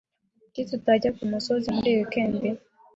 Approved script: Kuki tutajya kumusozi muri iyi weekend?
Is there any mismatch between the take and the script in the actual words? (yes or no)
no